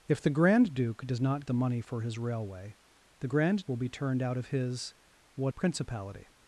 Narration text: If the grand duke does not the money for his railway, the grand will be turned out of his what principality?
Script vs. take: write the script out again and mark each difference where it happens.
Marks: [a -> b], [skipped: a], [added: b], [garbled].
If the grand duke does not the money for his railway, the grand will be turned out of his what principality?